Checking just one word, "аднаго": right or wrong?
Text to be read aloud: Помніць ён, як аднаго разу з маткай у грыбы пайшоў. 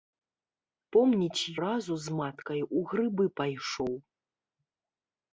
wrong